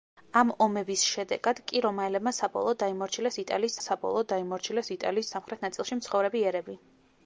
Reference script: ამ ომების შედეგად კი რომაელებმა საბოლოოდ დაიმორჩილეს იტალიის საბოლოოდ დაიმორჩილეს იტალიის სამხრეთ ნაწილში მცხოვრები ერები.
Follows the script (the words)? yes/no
yes